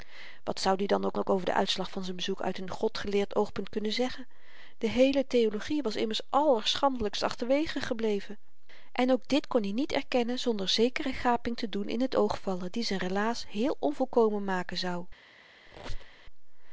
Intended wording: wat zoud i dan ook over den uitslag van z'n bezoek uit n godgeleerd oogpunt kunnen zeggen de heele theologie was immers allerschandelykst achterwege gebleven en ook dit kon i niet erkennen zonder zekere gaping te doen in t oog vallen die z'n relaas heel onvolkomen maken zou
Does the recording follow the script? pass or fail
fail